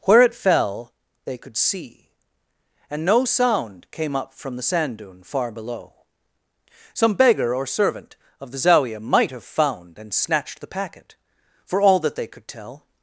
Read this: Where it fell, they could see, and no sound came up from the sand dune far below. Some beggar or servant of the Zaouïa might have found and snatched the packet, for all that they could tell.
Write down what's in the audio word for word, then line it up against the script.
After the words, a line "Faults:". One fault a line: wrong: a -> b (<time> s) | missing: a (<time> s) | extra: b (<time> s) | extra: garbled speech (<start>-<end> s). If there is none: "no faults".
Where it fell, they could see, and no sound came up from the sand dune far below. Some beggar or servant of the Zaouïa might have found and snatched the packet, for all that they could tell.
Faults:
no faults